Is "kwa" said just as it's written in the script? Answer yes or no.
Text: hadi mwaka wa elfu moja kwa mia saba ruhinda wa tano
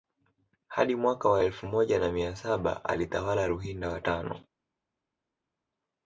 no